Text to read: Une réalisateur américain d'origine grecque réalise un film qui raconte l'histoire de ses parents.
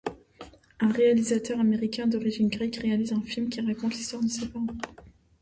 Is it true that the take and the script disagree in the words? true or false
true